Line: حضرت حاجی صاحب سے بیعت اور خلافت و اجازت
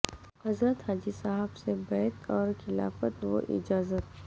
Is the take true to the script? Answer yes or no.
yes